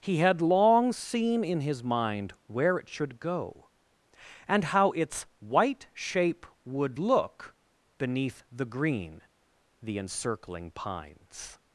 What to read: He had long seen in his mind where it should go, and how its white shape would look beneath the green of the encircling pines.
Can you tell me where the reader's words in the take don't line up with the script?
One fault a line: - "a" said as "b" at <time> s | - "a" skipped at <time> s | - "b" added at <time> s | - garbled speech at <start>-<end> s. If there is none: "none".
- "of" skipped at 9.2 s